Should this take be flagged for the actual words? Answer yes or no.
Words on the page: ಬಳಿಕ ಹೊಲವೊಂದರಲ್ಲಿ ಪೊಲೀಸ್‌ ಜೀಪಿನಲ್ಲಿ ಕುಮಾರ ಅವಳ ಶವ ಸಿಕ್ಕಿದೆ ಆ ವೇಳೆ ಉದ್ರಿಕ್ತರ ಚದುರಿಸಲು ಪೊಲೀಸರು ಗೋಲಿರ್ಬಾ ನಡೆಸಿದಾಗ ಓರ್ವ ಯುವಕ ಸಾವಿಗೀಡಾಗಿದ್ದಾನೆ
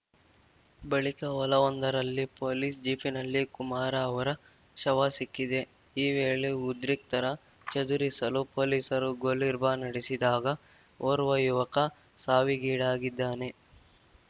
yes